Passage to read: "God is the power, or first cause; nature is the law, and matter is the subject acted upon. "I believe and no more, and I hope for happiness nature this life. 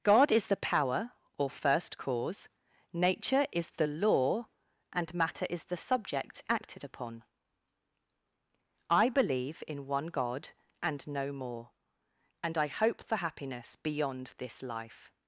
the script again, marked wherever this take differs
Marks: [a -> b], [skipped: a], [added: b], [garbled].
"God is the power, or first cause; nature is the law, and matter is the subject acted upon. "I believe [added: in one God] and no more, and I hope for happiness [nature -> beyond] this life.